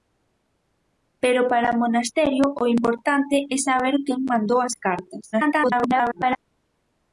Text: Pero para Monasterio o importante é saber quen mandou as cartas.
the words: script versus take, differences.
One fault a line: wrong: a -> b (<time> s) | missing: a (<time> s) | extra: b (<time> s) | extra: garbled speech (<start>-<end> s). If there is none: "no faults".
extra: garbled speech (5.3-6.4 s)